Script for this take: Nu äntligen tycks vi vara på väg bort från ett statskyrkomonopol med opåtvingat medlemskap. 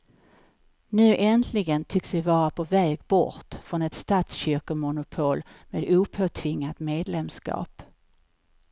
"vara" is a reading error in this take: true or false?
false